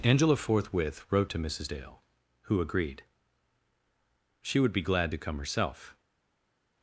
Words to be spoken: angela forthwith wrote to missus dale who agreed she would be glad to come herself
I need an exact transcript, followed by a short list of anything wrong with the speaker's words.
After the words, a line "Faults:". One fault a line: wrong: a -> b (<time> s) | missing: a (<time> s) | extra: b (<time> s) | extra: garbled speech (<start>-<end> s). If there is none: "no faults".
angela forthwith wrote to missus dale who agreed she would be glad to come herself
Faults:
no faults